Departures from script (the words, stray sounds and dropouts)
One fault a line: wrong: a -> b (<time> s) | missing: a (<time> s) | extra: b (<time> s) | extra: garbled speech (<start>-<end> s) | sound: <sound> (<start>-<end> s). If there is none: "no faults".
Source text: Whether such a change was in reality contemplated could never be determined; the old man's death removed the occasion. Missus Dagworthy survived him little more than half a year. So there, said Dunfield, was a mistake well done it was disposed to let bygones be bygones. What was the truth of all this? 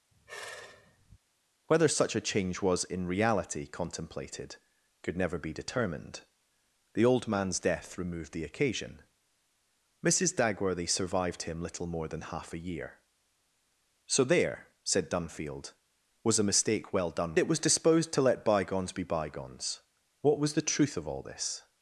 sound: sigh (0.1-1.2 s)